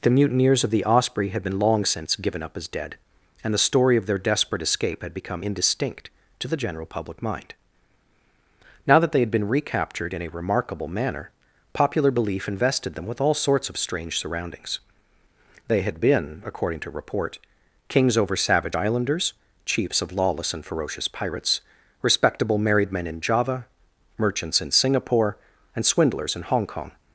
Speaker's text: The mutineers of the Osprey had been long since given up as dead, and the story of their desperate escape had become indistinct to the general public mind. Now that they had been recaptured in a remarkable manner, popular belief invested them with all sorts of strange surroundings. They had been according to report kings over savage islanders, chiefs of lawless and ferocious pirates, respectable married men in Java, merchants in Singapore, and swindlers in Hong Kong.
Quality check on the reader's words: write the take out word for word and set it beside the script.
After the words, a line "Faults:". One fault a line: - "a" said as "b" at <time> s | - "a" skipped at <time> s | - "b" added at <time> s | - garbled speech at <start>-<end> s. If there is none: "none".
The mutineers of the Osprey had been long since given up as dead, and the story of their desperate escape had become indistinct to the general public mind. Now that they had been recaptured in a remarkable manner, popular belief invested them with all sorts of strange surroundings. They had been according to report kings over savage islanders, chiefs of lawless and ferocious pirates, respectable married men in Java, merchants in Singapore, and swindlers in Hong Kong.
Faults:
none